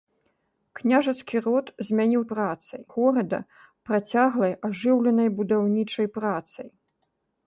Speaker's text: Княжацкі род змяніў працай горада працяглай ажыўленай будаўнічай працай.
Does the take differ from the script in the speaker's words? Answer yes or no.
no